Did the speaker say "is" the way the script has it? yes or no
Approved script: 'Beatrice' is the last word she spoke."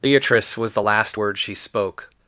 no